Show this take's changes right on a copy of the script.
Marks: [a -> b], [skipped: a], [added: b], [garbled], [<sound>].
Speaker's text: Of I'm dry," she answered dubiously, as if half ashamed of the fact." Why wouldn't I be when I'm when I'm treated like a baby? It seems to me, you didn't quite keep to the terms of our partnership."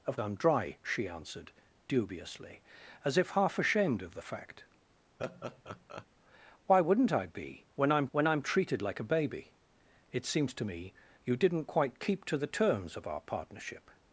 Of I'm dry," she answered dubiously, as if half ashamed of the fact." [laugh] Why wouldn't I be when I'm when I'm treated like a baby? It seems to me, you didn't quite keep to the terms of our partnership."